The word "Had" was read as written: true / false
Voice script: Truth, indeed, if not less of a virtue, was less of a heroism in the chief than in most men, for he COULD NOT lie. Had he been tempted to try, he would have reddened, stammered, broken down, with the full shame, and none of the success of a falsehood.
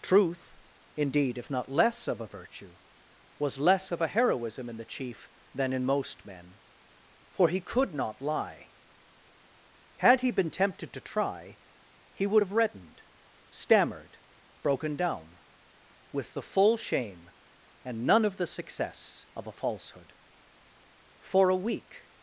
true